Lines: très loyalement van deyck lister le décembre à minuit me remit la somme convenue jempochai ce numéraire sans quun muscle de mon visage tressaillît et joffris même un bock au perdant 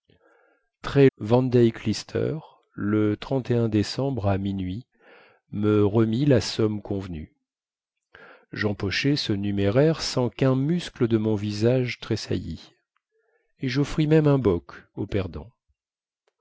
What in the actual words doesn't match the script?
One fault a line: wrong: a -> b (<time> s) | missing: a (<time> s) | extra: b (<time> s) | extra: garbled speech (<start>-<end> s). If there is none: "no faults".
missing: loyalement (1.1 s)